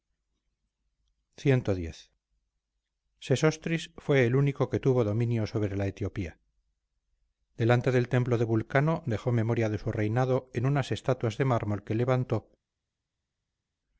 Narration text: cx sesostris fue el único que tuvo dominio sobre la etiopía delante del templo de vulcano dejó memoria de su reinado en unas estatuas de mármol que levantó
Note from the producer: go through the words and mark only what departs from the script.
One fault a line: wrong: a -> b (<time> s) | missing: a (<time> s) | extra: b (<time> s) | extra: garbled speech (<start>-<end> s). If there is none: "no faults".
no faults